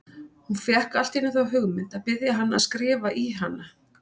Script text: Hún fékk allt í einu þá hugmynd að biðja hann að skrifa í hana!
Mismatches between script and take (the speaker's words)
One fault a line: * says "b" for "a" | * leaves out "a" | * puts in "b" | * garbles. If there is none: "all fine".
all fine